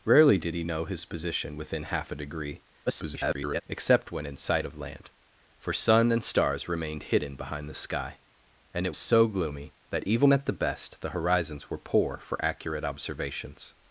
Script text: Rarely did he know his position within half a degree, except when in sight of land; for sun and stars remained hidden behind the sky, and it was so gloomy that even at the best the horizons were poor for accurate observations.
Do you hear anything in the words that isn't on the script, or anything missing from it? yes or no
yes